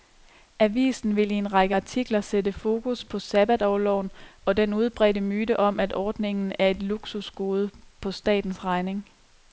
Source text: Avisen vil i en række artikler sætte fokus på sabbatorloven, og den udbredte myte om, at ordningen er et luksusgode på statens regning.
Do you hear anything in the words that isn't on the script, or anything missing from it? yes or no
no